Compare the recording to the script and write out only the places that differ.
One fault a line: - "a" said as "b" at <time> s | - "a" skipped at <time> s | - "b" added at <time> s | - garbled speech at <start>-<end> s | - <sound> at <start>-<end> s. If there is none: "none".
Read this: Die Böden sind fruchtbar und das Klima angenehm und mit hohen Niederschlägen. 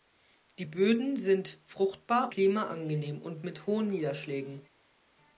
- "und das" skipped at 2.3 s